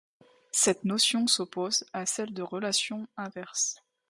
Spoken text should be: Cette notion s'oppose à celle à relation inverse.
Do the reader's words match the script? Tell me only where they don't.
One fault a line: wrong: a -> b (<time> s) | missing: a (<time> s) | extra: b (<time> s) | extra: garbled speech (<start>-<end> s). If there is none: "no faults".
wrong: à -> de (2.3 s)